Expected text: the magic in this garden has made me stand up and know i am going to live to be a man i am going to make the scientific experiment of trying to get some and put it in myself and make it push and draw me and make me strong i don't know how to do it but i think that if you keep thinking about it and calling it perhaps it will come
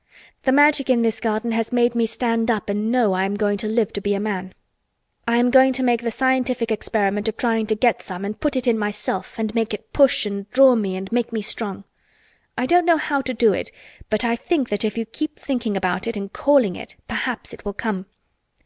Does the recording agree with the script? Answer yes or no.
yes